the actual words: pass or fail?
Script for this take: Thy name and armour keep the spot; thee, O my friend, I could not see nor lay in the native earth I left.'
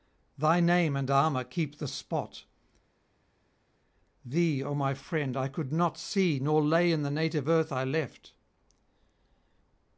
pass